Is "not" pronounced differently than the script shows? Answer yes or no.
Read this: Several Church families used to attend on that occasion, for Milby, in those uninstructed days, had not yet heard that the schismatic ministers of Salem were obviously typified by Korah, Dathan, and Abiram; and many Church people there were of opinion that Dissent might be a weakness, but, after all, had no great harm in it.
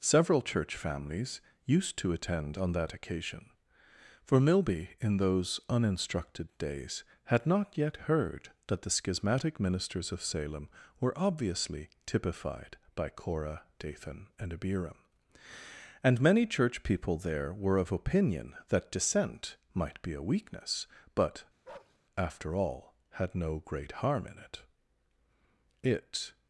no